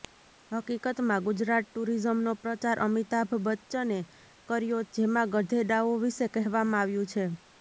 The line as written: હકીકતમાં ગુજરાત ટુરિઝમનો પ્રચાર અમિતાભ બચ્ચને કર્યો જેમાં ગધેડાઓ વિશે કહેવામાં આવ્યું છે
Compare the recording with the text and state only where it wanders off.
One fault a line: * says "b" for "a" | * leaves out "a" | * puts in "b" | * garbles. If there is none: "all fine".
all fine